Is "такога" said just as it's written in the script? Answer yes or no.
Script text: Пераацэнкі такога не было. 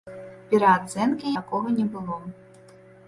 yes